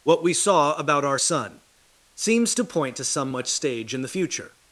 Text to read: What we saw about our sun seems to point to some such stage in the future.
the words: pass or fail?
fail